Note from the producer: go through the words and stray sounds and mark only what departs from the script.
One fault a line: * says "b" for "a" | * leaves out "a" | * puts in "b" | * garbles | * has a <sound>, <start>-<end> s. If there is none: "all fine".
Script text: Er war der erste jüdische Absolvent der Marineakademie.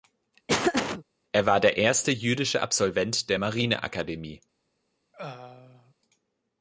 * has a laugh, 0.5-1.0 s
* has a throat clearing, 5.1-5.9 s